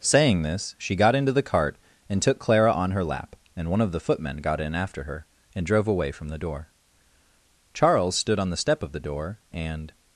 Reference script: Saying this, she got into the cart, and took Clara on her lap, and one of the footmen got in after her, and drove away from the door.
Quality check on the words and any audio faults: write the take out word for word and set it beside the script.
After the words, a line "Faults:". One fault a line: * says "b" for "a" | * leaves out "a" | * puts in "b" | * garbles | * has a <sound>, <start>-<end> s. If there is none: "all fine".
Saying this, she got into the cart, and took Clara on her lap, and one of the footmen got in after her, and drove away from the door. Charles stood on the step of the door, and
Faults:
* puts in "Charles stood on the step of the door and"